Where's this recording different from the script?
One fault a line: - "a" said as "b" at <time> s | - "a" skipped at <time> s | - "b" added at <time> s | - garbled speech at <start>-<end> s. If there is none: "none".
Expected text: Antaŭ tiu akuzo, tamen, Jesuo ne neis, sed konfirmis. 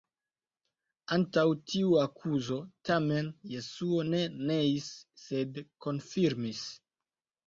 none